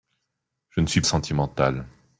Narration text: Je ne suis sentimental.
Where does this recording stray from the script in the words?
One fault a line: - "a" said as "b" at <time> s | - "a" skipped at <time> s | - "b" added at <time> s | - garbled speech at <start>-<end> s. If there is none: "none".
none